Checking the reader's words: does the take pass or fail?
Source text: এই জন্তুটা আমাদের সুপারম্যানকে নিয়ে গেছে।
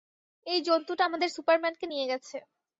pass